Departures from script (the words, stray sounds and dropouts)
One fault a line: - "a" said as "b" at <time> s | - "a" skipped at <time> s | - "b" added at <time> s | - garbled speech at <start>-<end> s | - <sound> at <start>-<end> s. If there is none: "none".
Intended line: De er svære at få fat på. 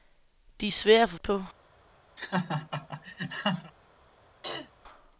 - "fat" skipped at 1.2 s
- laugh at 2.2-3.7 s
- throat clearing at 4.4-4.7 s